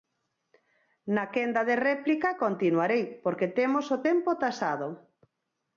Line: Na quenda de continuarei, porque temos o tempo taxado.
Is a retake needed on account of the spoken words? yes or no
yes